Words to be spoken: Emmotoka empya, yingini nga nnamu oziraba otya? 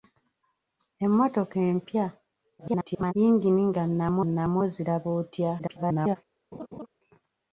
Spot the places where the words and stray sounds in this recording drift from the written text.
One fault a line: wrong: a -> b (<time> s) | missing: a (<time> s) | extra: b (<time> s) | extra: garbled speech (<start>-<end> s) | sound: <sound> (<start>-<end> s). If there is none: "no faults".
extra: garbled speech (2.6-3.1 s)
extra: nnamu (4.3 s)
extra: garbled speech (5.6-6.2 s)
sound: laugh (6.5-6.9 s)